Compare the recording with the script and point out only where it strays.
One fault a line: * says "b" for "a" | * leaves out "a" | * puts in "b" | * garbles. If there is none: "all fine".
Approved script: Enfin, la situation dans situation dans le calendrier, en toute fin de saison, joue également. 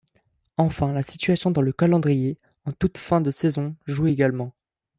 * leaves out "situation dans"